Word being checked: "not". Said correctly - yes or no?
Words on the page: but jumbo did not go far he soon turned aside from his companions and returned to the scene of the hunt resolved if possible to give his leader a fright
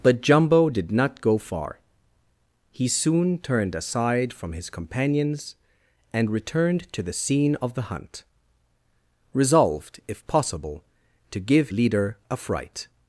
yes